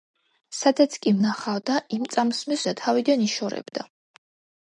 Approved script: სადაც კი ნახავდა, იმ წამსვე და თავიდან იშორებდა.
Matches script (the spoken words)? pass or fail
pass